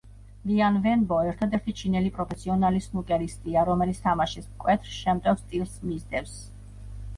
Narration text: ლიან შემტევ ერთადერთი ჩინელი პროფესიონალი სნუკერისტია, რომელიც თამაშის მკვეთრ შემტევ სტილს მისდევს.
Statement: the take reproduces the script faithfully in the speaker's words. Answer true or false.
false